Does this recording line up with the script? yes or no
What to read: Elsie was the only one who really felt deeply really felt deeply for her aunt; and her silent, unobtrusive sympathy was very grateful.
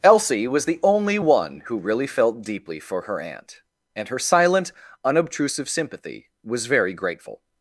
no